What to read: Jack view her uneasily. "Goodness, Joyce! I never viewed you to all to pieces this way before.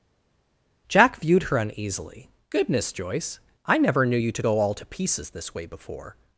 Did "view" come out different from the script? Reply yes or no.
yes